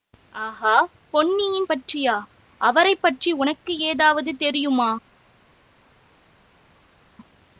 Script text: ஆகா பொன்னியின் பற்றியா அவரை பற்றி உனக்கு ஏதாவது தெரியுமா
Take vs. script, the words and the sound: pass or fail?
pass